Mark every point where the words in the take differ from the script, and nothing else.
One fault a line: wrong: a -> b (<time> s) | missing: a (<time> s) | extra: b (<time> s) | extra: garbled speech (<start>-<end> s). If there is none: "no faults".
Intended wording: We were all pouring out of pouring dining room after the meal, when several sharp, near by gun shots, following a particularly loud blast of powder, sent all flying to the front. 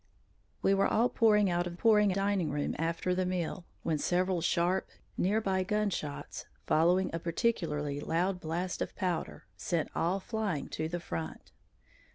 no faults